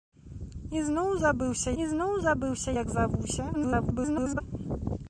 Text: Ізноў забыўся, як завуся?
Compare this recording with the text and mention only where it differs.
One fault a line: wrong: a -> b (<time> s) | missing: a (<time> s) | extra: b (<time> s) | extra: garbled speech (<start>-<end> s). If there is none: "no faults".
extra: ізноў забыўся (1.8 s)
extra: garbled speech (3.5-4.4 s)